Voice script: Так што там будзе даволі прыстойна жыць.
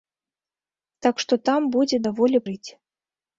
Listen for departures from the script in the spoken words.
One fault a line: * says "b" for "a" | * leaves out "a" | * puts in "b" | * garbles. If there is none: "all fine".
* leaves out "прыстойна"